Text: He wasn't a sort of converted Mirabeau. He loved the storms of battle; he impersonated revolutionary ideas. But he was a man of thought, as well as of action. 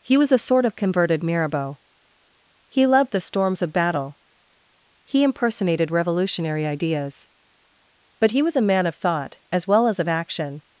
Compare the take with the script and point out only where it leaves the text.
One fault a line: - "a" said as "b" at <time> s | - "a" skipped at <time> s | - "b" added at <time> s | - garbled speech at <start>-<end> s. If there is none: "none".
- "wasn't" said as "was" at 0.2 s